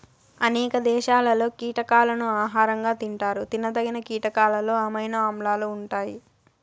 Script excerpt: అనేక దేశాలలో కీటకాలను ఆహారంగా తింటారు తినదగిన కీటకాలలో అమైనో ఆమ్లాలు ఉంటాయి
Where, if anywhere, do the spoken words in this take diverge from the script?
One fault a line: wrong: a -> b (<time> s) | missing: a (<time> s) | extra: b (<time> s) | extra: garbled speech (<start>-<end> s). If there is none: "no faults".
no faults